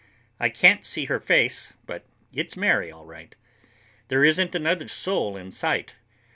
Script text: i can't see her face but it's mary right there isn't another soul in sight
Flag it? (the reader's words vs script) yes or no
yes